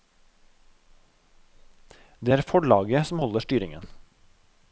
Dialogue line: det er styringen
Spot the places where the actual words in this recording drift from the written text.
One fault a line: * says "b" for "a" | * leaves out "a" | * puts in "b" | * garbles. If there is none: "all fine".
* puts in "forlaget som holder"